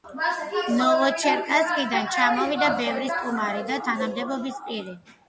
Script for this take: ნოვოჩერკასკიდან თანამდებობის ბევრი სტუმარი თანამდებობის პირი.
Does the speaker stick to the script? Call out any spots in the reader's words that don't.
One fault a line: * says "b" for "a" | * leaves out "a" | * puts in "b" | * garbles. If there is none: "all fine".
* says "ჩამოვიდა" for "თანამდებობის"
* puts in "და"